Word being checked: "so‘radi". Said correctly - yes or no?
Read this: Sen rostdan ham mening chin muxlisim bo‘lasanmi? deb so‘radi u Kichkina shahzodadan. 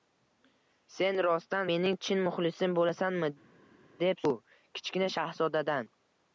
no